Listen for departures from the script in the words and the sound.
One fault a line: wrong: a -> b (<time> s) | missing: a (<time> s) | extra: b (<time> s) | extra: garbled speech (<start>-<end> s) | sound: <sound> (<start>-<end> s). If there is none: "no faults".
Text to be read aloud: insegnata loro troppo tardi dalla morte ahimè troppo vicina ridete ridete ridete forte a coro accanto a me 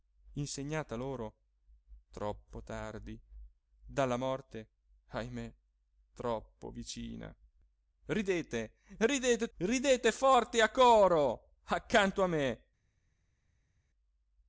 no faults